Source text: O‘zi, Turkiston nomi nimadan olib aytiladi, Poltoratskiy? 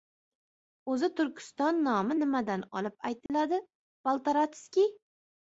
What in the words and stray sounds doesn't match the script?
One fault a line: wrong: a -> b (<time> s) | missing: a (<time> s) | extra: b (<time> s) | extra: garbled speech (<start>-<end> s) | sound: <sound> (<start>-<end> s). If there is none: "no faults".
sound: dropout (3.3-3.3 s)